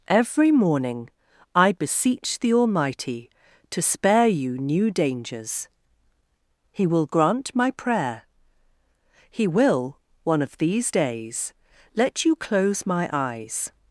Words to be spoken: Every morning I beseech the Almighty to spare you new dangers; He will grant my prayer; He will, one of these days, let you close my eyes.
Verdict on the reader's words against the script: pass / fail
pass